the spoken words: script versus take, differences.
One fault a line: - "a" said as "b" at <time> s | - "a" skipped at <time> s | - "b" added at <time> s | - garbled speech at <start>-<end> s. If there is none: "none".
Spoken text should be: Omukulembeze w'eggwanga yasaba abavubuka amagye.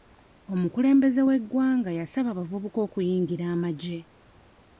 - "okuyingira" added at 2.9 s